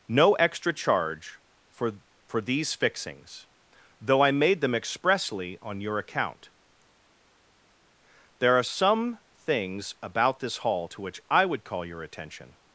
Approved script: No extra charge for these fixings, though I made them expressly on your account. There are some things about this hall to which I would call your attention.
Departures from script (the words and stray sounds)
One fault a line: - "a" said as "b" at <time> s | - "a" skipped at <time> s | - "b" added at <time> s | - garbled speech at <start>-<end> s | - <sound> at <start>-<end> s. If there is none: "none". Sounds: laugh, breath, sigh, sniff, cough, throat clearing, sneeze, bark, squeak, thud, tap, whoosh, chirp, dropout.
- "for" added at 2.3 s